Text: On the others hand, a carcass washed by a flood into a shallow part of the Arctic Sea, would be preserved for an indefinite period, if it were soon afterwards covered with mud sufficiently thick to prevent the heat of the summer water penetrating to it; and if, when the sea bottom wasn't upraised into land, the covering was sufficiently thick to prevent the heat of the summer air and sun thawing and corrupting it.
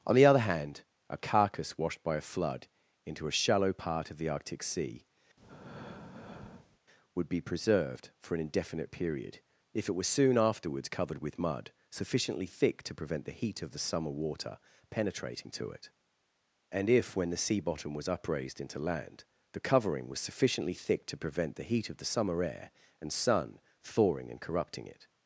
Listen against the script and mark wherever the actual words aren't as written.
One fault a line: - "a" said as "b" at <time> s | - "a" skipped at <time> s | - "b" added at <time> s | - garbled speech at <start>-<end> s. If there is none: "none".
- "others" said as "other" at 0.2 s
- "wasn't" said as "was" at 17.9 s